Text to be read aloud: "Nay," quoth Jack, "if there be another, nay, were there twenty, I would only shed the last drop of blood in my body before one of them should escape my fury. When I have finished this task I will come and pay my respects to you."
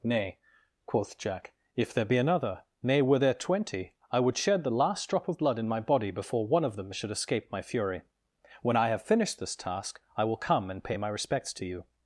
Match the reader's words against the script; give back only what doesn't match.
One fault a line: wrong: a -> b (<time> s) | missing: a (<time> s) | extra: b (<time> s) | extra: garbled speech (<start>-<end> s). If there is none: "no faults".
missing: only (4.3 s)